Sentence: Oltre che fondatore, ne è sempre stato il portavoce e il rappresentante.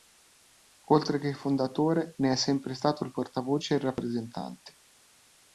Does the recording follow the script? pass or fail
pass